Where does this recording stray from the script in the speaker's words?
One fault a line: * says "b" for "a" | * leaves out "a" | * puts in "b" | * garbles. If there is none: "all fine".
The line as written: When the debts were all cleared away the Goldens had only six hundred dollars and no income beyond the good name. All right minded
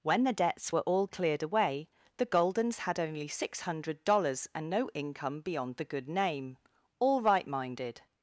all fine